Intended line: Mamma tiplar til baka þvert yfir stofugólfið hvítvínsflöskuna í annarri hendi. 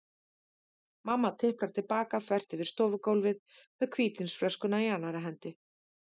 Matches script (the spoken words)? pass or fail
fail